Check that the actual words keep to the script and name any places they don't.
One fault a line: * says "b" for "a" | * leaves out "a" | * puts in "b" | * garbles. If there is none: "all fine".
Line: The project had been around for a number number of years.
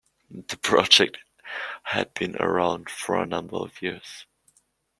* leaves out "number"